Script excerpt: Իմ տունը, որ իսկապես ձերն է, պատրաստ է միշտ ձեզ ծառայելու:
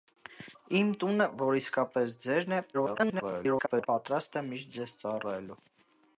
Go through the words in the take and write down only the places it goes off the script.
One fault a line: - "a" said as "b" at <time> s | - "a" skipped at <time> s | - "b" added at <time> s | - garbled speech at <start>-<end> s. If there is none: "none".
- garbled speech at 2.7-3.9 s